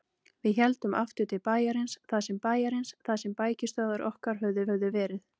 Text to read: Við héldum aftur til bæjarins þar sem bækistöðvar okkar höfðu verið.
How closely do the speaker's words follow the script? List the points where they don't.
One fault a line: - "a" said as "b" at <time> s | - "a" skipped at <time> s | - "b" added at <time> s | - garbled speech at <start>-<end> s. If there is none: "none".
- "bæjarins þar sem" added at 2.5 s
- "höfðu" added at 4.7 s